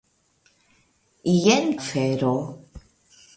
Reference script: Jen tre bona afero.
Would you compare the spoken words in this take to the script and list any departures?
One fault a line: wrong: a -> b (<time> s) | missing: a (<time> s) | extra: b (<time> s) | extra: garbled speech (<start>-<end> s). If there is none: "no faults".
missing: tre bona (1.7 s)